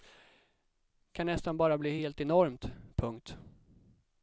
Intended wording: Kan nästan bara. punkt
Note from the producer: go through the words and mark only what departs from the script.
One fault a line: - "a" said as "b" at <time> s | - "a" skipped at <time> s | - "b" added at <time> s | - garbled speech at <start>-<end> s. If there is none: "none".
- "bli helt enormt" added at 1.8 s